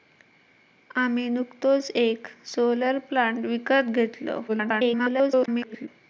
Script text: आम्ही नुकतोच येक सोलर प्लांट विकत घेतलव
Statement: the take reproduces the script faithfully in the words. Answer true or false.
false